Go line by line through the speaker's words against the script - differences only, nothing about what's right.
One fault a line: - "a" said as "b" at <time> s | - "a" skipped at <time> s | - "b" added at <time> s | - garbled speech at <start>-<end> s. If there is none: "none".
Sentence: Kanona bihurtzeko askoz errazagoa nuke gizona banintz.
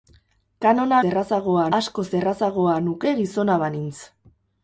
- "bihurtzeko" said as "errazagoa" at 1.1 s